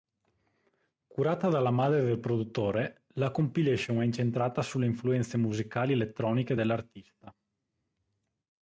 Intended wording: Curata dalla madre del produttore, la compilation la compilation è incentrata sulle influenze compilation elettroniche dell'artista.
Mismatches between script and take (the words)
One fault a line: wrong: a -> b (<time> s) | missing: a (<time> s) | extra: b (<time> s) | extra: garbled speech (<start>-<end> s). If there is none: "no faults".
missing: la compilation (4.0 s)
wrong: compilation -> musicali (5.4 s)